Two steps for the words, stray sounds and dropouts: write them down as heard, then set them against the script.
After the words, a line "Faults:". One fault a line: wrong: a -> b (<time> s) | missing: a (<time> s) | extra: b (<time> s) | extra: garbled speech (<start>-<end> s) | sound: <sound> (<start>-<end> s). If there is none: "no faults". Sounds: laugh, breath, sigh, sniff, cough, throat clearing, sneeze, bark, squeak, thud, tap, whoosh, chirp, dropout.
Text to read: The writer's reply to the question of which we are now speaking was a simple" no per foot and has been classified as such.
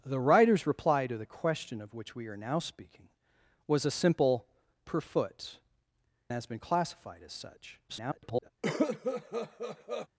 The writer's reply to the question of which we are now speaking was a simple" per foot has been classified as such. [garbled]
Faults:
missing: no (4.5 s)
missing: and (5.6 s)
extra: garbled speech (7.9-8.5 s)
sound: cough (8.6-10.1 s)